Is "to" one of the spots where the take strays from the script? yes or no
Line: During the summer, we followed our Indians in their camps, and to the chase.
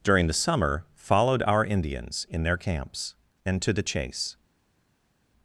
no